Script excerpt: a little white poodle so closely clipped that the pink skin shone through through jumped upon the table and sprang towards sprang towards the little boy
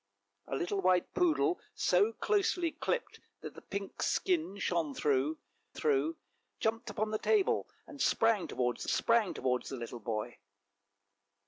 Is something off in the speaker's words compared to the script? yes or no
no